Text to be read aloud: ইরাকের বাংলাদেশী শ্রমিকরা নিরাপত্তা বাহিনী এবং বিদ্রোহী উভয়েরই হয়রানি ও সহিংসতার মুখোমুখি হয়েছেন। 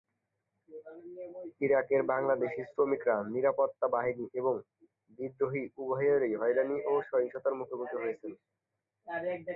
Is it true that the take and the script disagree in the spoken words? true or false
false